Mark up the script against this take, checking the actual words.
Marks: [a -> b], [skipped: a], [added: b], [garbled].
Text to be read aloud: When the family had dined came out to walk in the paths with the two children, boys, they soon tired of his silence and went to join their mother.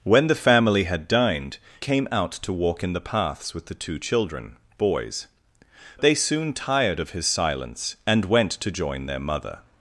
When the family had dined came out to walk in the paths with the two children, boys, they soon tired of his silence and went to join their mother.